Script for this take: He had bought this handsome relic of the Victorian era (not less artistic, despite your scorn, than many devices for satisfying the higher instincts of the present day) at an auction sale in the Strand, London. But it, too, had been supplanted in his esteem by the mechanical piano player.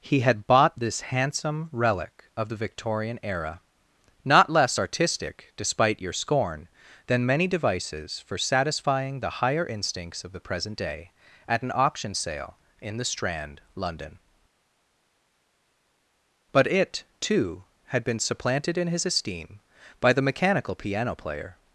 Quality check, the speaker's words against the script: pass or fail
pass